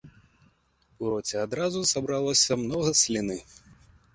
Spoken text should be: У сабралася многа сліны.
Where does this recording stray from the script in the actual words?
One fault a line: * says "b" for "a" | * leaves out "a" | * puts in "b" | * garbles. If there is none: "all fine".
* puts in "роце адразу"